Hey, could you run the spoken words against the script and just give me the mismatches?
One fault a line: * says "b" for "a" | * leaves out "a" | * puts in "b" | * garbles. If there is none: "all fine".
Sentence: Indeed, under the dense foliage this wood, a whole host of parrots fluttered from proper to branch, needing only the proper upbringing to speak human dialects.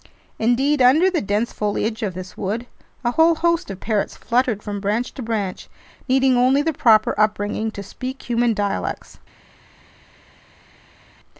* puts in "of"
* says "branch" for "proper"